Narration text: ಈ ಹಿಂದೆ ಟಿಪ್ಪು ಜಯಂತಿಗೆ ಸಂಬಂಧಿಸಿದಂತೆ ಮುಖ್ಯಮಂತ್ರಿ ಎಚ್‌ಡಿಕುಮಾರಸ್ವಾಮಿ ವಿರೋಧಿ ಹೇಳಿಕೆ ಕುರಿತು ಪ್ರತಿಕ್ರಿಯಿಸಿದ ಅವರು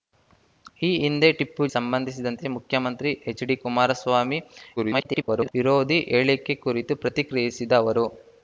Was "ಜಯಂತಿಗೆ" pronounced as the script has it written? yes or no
no